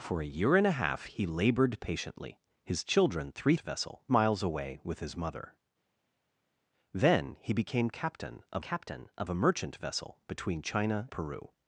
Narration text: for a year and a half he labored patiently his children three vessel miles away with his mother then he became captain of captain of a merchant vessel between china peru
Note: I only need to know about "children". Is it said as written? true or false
true